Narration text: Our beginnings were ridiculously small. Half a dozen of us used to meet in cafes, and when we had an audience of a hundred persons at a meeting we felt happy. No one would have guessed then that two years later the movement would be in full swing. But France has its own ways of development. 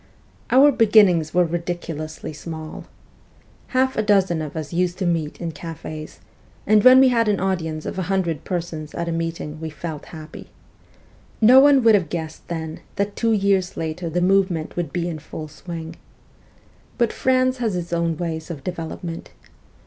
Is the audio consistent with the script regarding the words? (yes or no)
yes